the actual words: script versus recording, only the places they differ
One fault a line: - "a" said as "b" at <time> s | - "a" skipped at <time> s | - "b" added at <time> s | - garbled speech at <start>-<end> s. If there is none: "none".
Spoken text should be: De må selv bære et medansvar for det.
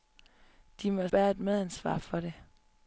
- "selv" skipped at 1.1 s